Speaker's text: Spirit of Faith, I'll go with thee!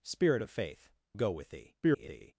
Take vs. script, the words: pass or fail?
fail